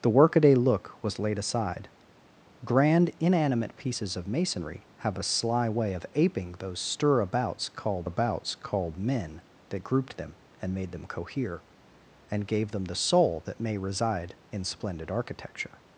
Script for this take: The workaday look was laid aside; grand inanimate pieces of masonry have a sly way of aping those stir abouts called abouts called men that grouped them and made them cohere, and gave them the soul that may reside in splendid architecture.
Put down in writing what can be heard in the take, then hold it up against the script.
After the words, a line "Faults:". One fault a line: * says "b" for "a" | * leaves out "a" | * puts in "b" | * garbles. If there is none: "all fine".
The workaday look was laid aside; grand inanimate pieces of masonry have a sly way of aping those stir abouts called abouts called men that grouped them and made them cohere, and gave them the soul that may reside in splendid architecture.
Faults:
all fine